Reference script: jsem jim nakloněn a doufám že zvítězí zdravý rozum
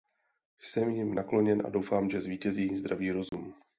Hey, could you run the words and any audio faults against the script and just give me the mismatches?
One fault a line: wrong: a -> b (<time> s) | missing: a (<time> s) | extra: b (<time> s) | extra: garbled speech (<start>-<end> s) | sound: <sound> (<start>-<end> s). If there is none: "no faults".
sound: dropout (3.3-3.3 s)